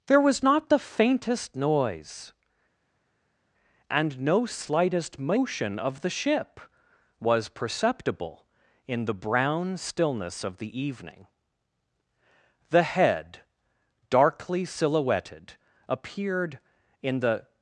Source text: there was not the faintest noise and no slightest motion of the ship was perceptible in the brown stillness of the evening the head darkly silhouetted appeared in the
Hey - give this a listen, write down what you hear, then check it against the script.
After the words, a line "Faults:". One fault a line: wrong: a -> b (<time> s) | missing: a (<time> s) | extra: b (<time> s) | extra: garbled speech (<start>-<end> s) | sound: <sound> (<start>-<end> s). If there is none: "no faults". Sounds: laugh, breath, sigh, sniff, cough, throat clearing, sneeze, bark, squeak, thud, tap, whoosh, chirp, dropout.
there was not the faintest noise and no slightest motion of the ship was perceptible in the brown stillness of the evening the head darkly silhouetted appeared in the
Faults:
no faults